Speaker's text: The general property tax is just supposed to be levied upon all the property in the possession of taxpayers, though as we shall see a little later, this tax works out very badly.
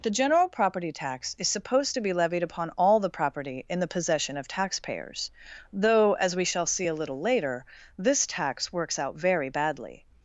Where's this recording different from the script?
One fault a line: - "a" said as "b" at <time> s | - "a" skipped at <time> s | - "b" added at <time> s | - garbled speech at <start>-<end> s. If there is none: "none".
- "just" skipped at 1.5 s